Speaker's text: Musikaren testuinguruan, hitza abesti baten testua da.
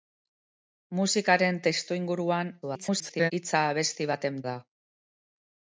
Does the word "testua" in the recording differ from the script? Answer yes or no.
yes